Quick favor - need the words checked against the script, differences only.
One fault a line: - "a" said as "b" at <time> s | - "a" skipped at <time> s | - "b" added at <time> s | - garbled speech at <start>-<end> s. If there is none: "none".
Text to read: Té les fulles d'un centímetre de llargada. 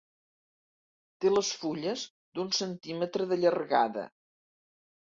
none